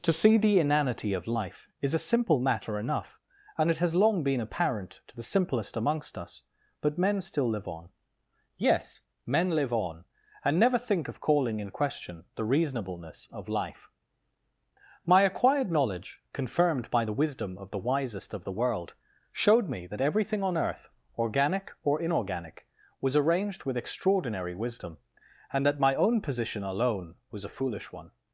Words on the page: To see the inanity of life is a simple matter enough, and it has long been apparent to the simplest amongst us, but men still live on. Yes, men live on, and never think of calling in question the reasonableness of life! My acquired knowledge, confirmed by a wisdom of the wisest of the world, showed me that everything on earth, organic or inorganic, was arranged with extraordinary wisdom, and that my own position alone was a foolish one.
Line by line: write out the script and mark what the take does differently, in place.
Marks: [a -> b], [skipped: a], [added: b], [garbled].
To see the inanity of life is a simple matter enough, and it has long been apparent to the simplest amongst us, but men still live on. Yes, men live on, and never think of calling in question the reasonableness of life! My acquired knowledge, confirmed by [a -> the] wisdom of the wisest of the world, showed me that everything on earth, organic or inorganic, was arranged with extraordinary wisdom, and that my own position alone was a foolish one.